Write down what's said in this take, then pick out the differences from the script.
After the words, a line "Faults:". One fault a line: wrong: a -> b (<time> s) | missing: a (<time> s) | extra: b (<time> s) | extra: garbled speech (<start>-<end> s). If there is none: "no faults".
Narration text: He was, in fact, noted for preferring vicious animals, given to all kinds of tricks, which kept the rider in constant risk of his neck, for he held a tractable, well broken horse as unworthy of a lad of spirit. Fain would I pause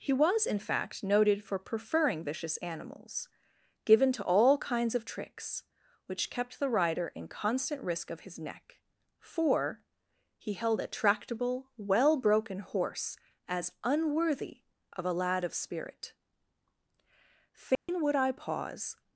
He was, in fact, noted for preferring vicious animals, given to all kinds of tricks, which kept the rider in constant risk of his neck, for he held a tractable, well broken horse as unworthy of a lad of spirit. Fain would I pause
Faults:
no faults